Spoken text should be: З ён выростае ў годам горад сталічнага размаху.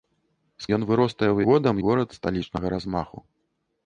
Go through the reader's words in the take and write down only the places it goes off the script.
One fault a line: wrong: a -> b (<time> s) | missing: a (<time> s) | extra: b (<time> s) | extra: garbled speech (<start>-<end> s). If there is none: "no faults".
no faults